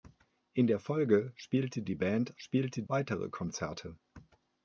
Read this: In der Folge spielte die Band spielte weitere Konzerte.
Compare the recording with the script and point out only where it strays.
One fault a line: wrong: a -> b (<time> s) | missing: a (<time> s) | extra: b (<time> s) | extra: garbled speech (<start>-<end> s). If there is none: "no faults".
no faults